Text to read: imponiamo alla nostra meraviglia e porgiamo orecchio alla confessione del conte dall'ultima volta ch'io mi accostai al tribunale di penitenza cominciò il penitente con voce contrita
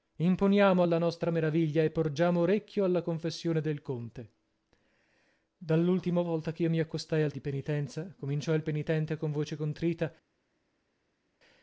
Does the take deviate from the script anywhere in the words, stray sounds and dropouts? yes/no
yes